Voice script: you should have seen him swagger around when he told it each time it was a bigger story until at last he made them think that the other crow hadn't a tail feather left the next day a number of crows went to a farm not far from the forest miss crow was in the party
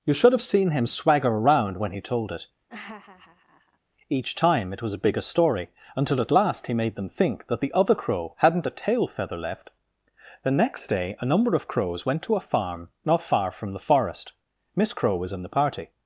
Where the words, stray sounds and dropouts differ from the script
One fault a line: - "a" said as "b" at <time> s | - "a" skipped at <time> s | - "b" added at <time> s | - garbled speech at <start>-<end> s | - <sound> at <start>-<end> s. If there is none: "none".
- laugh at 2.7-3.8 s